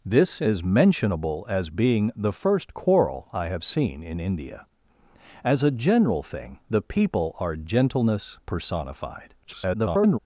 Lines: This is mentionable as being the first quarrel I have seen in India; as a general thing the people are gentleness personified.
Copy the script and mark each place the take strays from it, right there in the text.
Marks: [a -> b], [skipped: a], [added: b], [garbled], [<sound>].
This is mentionable as being the first quarrel I have seen in India; as a general thing the people are gentleness personified. [garbled]